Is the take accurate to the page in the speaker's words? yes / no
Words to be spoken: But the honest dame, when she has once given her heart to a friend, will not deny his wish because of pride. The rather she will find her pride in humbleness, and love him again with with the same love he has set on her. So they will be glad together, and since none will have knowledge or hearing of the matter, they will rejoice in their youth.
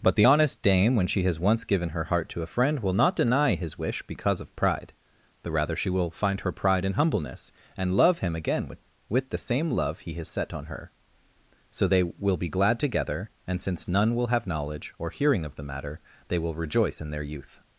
yes